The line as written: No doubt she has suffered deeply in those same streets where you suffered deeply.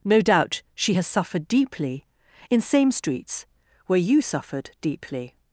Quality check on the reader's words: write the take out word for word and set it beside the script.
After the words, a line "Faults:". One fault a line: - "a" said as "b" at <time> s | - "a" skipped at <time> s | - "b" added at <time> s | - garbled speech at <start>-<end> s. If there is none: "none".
No doubt she has suffered deeply in same streets where you suffered deeply.
Faults:
- "those" skipped at 2.6 s